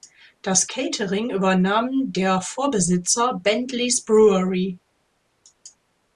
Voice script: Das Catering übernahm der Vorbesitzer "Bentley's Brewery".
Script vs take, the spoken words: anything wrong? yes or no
no